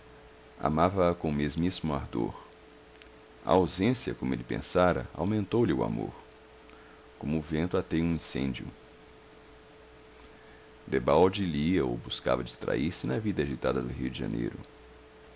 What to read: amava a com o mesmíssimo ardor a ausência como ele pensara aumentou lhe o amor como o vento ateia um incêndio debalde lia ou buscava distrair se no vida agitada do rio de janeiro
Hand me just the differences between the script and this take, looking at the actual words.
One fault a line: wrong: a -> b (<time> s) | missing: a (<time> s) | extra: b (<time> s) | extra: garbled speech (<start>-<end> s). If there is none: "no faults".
wrong: no -> na (13.1 s)